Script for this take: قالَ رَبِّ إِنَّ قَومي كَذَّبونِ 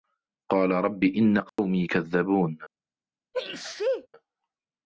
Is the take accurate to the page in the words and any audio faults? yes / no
no